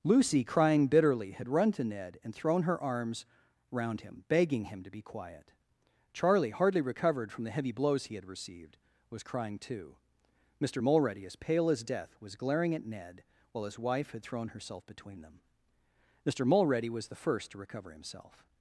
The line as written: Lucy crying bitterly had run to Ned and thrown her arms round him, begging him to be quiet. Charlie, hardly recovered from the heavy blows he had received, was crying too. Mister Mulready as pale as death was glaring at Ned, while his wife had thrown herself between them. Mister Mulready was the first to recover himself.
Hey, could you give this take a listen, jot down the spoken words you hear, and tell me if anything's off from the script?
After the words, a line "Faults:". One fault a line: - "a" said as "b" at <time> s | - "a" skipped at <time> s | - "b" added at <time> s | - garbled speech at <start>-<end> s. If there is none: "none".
Lucy crying bitterly had run to Ned and thrown her arms round him, begging him to be quiet. Charlie, hardly recovered from the heavy blows he had received, was crying too. Mister Mulready as pale as death was glaring at Ned, while his wife had thrown herself between them. Mister Mulready was the first to recover himself.
Faults:
none